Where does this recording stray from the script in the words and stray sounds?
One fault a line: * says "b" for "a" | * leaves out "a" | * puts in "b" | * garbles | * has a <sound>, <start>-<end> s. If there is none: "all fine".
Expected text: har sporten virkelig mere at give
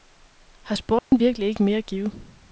* has a dropout, 1.0-1.1 s
* puts in "ikke"